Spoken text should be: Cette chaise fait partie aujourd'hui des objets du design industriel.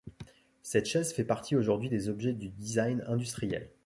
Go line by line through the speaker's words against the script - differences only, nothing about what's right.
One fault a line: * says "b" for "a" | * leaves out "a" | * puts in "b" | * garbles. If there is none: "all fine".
all fine